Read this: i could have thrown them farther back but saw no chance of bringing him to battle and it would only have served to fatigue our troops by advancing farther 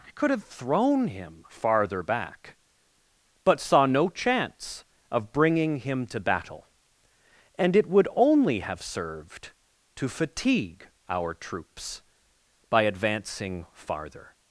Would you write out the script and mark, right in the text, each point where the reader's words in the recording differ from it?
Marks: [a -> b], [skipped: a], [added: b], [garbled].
i could have thrown [them -> him] farther back but saw no chance of bringing him to battle and it would only have served to fatigue our troops by advancing farther